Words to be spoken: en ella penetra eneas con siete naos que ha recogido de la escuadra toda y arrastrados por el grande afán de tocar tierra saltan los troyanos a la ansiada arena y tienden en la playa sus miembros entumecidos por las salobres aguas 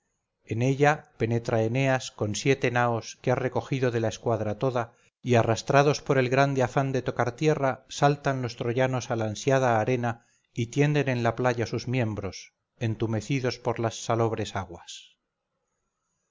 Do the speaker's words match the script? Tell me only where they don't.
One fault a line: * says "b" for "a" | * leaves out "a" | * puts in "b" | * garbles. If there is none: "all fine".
all fine